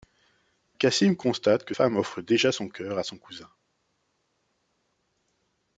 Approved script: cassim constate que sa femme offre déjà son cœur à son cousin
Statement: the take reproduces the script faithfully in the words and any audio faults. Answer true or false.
false